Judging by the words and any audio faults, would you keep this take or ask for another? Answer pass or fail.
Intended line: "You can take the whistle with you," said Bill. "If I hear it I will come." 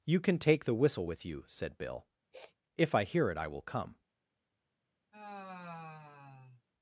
fail